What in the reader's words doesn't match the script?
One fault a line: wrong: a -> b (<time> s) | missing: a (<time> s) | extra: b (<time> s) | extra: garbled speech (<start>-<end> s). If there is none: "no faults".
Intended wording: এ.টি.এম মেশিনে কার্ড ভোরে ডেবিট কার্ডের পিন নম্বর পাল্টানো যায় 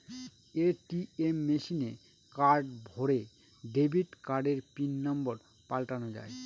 no faults